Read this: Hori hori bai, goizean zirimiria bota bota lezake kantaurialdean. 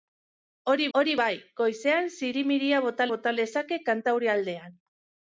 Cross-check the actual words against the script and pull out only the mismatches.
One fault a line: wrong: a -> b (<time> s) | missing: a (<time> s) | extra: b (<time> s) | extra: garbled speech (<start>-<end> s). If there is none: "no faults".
no faults